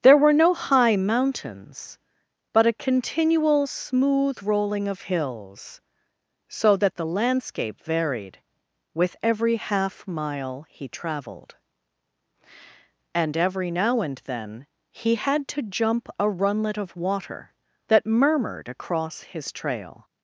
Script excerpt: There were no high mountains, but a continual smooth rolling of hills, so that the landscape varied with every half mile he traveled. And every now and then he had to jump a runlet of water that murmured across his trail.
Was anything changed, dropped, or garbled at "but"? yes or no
no